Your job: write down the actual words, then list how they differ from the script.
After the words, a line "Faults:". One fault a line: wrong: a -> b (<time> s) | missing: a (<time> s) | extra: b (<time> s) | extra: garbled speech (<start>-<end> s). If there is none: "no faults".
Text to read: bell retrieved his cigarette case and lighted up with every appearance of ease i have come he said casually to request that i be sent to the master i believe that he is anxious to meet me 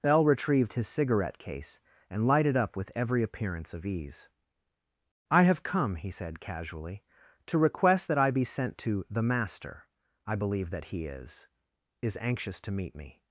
bell retrieved his cigarette case and lighted up with every appearance of ease i have come he said casually to request that i be sent to the master i believe that he is is anxious to meet me
Faults:
extra: is (12.0 s)